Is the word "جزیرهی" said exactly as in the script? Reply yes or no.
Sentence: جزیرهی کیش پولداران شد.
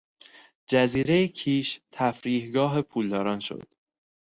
yes